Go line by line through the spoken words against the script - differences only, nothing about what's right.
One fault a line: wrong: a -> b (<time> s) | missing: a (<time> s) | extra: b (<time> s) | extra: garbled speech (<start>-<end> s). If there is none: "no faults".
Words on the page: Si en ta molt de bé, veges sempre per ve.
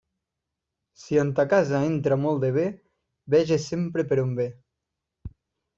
extra: casa entra (1.5 s)
extra: on (4.3 s)